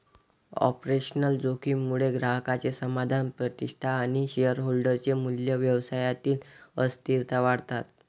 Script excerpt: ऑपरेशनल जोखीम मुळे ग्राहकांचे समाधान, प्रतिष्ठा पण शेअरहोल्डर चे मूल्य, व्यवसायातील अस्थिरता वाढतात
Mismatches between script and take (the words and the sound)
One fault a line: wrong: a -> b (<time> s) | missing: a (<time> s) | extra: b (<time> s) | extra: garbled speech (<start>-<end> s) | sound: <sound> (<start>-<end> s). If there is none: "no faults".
wrong: पण -> आणि (4.0 s)